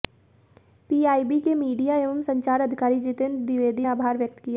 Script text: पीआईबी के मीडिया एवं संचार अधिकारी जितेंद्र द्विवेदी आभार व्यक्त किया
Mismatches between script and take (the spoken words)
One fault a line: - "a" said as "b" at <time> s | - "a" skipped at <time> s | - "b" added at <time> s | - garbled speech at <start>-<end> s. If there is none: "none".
none